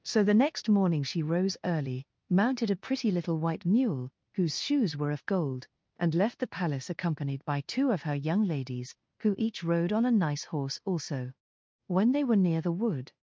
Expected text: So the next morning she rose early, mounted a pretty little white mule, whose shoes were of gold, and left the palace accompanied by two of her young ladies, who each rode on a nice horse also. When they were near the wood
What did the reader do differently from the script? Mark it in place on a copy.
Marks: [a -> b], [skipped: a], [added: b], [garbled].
So the next morning she rose early, mounted a pretty little white mule, whose shoes were of gold, and left the palace accompanied by two of her young ladies, who each rode on a nice horse also. When they were near the wood